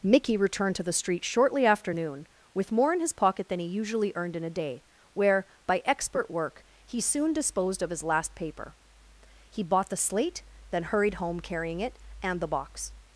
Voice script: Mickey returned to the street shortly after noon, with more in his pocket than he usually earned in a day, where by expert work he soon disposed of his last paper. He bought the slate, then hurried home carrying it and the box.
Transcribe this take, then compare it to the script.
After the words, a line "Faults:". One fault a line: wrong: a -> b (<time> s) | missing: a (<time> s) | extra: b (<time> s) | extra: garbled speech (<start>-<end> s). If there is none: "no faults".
Mickey returned to the street shortly after noon, with more in his pocket than he usually earned in a day, where by expert work he soon disposed of his last paper. He bought the slate, then hurried home carrying it and the box.
Faults:
no faults